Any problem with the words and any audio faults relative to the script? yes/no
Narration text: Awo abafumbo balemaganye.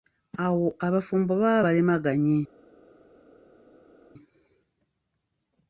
yes